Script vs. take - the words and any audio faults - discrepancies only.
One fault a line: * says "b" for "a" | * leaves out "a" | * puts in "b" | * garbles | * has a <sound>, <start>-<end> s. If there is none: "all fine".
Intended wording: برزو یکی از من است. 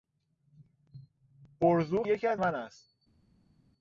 all fine